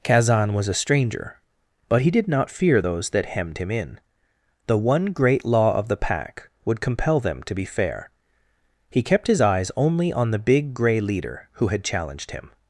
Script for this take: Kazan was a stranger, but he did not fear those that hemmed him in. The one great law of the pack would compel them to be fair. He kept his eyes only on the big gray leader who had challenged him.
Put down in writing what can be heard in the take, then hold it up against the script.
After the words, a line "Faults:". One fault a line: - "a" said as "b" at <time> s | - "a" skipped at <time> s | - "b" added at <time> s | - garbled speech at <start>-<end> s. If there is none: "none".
Kazan was a stranger, but he did not fear those that hemmed him in. The one great law of the pack would compel them to be fair. He kept his eyes only on the big gray leader who had challenged him.
Faults:
none